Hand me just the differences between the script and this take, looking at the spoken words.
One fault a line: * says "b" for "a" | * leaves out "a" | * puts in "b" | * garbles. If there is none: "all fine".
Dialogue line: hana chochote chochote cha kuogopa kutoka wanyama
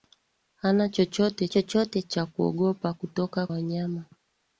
all fine